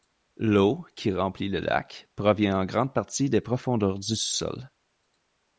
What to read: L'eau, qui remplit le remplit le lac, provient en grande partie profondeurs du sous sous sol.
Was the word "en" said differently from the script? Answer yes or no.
no